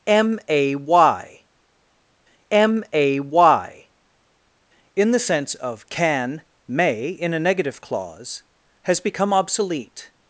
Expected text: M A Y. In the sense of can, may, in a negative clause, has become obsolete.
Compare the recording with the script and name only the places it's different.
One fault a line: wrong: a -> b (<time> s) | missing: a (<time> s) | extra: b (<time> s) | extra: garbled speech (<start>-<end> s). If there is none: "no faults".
extra: m A Y (2.5 s)